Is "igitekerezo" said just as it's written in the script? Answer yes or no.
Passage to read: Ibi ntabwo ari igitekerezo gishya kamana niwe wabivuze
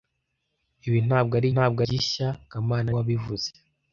no